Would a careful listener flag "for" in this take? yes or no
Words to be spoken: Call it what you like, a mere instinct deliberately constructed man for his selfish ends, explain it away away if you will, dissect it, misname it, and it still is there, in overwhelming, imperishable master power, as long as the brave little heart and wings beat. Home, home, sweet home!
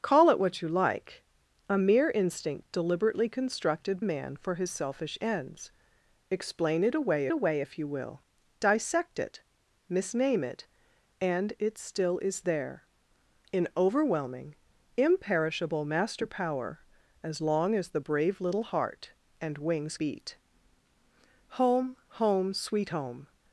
no